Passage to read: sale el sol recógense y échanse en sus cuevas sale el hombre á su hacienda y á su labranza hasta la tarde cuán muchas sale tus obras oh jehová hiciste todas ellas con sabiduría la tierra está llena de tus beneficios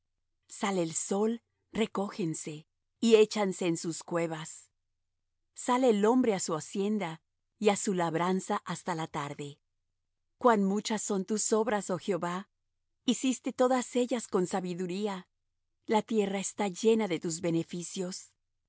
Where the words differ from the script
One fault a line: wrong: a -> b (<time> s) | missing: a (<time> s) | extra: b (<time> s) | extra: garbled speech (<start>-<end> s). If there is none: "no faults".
wrong: sale -> son (11.0 s)